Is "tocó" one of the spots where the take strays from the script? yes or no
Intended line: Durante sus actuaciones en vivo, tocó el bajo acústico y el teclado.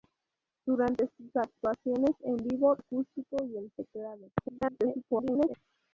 yes